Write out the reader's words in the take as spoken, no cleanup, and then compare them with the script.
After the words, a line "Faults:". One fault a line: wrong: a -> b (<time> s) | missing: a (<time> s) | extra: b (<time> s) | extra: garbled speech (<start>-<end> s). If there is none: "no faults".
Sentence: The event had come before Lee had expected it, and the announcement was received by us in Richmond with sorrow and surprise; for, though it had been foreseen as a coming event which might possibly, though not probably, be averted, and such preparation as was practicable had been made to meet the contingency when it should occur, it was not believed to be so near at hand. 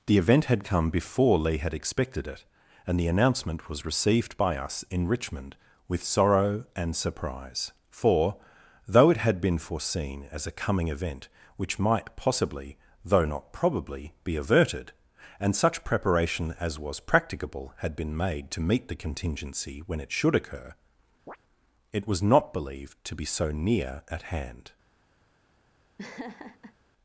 The event had come before Lee had expected it, and the announcement was received by us in Richmond with sorrow and surprise; for, though it had been foreseen as a coming event which might possibly, though not probably, be averted, and such preparation as was practicable had been made to meet the contingency when it should occur, it was not believed to be so near at hand.
Faults:
no faults